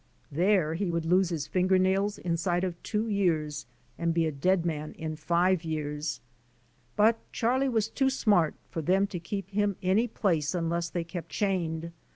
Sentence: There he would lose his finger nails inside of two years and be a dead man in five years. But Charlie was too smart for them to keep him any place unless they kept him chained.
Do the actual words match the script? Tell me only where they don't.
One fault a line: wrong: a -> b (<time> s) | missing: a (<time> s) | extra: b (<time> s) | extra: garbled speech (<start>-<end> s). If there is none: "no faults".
missing: him (11.3 s)